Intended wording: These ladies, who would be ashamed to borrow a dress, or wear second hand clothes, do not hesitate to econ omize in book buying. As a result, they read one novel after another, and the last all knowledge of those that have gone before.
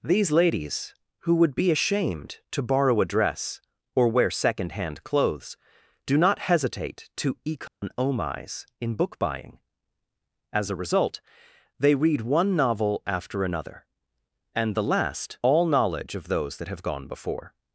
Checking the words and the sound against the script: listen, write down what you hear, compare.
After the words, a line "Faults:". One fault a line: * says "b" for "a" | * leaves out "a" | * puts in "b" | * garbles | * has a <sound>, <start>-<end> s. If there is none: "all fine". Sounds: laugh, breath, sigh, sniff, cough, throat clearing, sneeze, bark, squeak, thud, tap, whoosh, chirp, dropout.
These ladies, who would be ashamed to borrow a dress, or wear second hand clothes, do not hesitate to econ omize in book buying. As a result, they read one novel after another, and the last all knowledge of those that have gone before.
Faults:
* has a dropout, 7.7-7.8 s